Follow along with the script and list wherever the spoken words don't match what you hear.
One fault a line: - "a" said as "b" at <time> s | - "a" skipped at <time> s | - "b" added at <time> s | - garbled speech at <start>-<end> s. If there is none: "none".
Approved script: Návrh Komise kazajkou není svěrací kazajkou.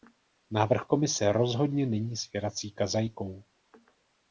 - "kazajkou" said as "rozhodně" at 1.3 s